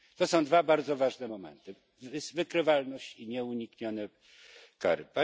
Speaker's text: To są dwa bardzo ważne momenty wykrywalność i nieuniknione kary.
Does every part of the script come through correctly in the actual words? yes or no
yes